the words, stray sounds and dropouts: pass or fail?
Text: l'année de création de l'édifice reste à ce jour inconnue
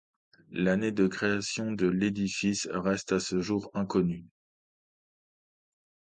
pass